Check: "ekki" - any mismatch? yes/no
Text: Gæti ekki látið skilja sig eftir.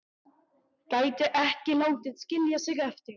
no